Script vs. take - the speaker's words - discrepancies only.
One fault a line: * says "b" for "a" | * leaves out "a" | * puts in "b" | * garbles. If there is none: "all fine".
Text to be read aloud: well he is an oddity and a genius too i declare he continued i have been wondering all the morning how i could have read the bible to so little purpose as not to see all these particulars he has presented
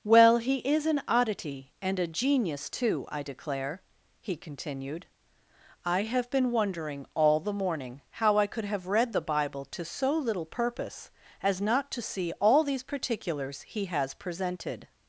all fine